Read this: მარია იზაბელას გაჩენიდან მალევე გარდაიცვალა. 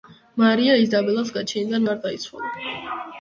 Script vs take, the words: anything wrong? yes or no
yes